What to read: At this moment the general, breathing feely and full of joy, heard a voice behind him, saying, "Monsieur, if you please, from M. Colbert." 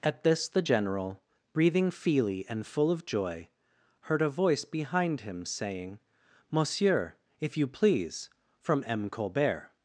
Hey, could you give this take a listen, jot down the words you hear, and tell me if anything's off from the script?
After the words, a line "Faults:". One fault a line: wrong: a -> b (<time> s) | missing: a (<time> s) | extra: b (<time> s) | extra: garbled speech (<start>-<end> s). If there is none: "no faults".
At this the general, breathing feely and full of joy, heard a voice behind him, saying, "Monsieur, if you please, from M. Colbert."
Faults:
missing: moment (0.5 s)